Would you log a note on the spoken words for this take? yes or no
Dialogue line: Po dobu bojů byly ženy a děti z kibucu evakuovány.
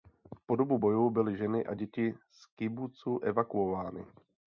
no